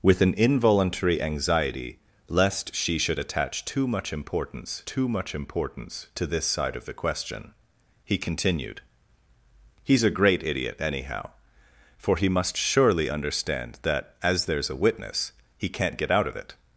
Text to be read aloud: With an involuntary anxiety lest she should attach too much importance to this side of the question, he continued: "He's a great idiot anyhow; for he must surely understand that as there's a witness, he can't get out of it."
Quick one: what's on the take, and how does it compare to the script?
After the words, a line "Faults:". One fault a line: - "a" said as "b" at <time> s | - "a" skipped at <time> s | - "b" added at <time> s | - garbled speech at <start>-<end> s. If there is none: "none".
With an involuntary anxiety lest she should attach too much importance too much importance to this side of the question, he continued: "He's a great idiot anyhow; for he must surely understand that as there's a witness, he can't get out of it."
Faults:
- "too much importance" added at 4.8 s